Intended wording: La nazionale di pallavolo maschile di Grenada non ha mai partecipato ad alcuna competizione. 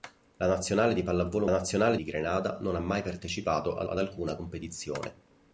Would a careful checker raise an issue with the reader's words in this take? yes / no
yes